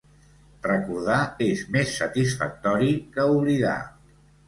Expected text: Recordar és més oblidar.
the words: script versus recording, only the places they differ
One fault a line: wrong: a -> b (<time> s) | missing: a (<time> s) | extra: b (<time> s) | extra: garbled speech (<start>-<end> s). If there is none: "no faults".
extra: satisfactori que (2.0 s)